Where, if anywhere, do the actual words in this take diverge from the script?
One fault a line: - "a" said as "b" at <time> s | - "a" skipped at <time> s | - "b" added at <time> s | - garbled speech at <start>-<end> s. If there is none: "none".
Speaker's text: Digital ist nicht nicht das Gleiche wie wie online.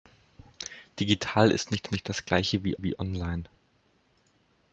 none